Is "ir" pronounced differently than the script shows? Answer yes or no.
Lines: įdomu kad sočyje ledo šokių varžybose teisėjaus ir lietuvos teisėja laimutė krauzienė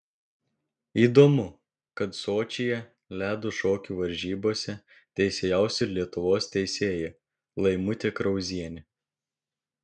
no